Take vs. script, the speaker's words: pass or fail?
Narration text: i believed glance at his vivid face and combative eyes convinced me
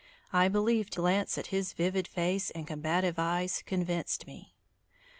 pass